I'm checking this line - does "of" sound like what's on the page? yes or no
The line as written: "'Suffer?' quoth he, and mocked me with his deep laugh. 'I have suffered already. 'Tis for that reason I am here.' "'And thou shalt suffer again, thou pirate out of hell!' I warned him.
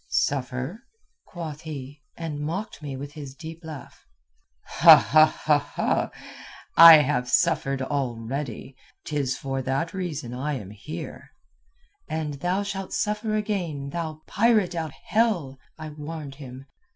no